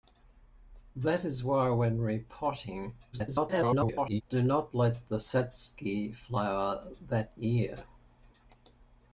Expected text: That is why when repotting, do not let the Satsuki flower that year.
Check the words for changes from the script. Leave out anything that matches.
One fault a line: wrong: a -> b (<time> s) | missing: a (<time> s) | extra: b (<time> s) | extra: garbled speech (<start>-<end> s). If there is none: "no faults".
extra: garbled speech (3.1-4.2 s)